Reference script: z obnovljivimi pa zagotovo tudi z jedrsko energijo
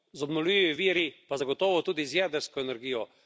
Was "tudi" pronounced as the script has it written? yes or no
yes